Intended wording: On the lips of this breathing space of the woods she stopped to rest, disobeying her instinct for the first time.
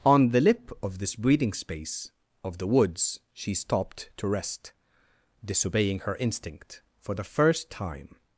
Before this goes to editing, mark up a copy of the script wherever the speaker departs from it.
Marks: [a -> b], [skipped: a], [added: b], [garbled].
On the [lips -> lip] of this breathing space of the woods she stopped to rest, disobeying her instinct for the first time.